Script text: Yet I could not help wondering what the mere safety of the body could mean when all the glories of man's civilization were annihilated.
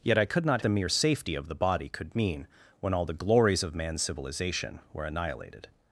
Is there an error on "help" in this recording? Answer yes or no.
yes